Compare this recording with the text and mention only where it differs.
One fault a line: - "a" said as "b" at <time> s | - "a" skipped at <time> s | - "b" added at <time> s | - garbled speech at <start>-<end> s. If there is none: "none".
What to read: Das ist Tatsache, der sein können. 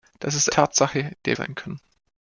none